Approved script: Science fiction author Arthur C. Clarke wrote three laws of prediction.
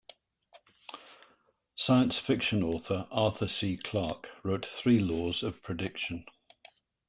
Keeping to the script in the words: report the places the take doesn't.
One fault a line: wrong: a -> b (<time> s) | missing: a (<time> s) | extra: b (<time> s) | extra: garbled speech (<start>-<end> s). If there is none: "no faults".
no faults